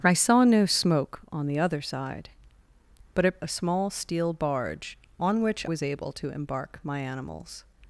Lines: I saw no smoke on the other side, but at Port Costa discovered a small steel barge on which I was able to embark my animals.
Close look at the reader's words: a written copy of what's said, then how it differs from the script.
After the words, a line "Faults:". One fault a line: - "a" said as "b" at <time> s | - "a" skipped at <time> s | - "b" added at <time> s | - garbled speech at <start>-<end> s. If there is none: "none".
I saw no smoke on the other side, but at A small steel barge on which was able to embark my animals.
Faults:
- "Port Costa discovered" skipped at 3.4 s
- "I" skipped at 5.6 s